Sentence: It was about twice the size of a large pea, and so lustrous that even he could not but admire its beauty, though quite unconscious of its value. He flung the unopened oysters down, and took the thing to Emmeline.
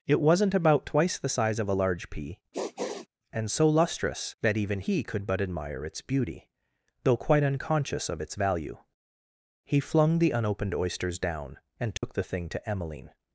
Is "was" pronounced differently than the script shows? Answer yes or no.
yes